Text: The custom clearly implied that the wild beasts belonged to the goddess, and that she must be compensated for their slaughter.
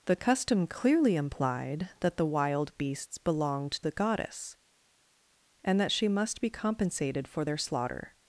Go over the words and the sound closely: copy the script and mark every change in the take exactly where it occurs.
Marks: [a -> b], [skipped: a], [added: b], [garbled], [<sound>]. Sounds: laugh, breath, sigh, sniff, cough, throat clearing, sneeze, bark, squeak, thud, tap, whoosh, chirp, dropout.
The custom clearly implied that the wild beasts belonged [skipped: to] the goddess, and that she must be compensated for their slaughter.